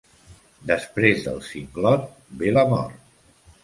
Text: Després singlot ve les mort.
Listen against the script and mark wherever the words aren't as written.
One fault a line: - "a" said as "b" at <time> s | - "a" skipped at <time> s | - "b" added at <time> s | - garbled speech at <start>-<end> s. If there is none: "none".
- "del" added at 1.3 s
- "les" said as "la" at 2.6 s